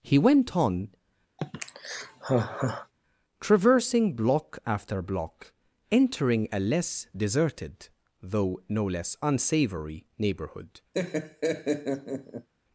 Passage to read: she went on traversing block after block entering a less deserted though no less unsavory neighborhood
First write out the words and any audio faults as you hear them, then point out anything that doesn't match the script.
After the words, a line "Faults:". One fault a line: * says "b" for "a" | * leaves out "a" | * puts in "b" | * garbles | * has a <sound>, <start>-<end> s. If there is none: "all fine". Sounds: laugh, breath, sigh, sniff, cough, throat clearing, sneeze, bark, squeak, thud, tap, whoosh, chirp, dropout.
he went on traversing block after block entering a less deserted though no less unsavory neighborhood
Faults:
* says "he" for "she"
* has a sigh, 1.4-2.9 s
* has a laugh, 10.9-12.5 s